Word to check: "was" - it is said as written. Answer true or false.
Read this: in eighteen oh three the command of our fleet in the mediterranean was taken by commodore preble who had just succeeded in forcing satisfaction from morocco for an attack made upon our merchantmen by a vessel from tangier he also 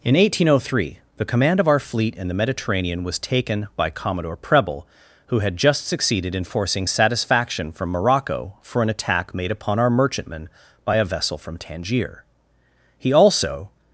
true